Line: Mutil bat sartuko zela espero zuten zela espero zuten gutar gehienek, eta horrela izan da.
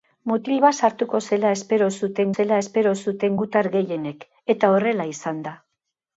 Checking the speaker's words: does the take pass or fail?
pass